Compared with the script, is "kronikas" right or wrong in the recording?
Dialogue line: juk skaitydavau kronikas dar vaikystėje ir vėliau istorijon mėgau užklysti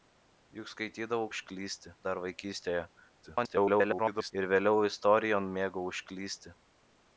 wrong